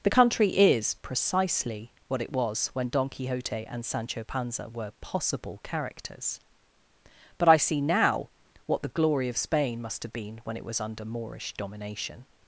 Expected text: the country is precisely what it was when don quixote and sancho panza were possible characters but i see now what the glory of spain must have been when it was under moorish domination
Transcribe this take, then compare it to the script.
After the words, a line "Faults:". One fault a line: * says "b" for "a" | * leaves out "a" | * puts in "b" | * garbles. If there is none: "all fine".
the country is precisely what it was when don quixote and sancho panza were possible characters but i see now what the glory of spain must have been when it was under moorish domination
Faults:
all fine